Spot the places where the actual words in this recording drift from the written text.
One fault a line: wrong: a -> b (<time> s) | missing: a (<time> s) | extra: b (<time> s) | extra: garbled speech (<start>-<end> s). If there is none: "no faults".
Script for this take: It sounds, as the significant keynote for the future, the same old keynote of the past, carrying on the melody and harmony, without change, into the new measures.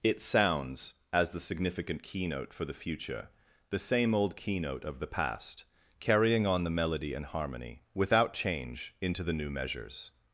no faults